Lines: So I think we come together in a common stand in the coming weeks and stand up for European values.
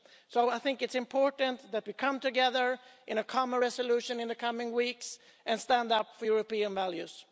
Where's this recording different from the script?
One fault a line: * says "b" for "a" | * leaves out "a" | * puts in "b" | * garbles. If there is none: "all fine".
* puts in "it's important that"
* says "resolution" for "stand"